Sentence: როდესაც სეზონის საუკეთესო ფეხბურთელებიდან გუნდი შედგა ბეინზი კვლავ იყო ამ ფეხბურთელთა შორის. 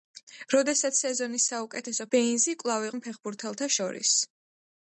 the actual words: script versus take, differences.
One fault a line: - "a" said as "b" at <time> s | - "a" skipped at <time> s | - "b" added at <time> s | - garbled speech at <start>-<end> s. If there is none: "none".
- "ფეხბურთელებიდან გუნდი შედგა" skipped at 2.1 s
- "იყო" skipped at 2.9 s